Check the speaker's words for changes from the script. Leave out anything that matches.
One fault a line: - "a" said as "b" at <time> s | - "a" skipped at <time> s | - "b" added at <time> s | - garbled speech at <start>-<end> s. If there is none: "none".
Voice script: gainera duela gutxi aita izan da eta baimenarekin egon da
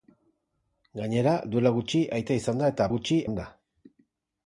- "baimenarekin" said as "gutxi" at 2.9 s